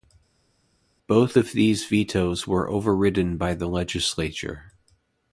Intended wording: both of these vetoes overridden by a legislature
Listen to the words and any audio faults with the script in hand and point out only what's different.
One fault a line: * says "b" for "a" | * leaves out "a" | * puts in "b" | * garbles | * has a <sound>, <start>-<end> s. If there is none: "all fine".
* puts in "were"
* says "the" for "a"